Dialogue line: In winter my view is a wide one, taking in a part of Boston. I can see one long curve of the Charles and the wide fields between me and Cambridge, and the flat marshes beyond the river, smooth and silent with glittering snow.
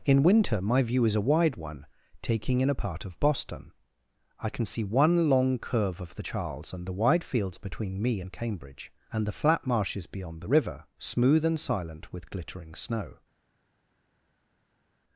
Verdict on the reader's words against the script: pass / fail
pass